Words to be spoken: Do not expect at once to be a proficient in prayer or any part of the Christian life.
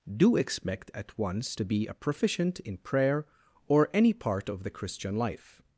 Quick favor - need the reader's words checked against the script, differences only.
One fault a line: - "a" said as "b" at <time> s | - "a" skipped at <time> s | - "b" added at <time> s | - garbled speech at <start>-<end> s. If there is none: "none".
- "not" skipped at 0.3 s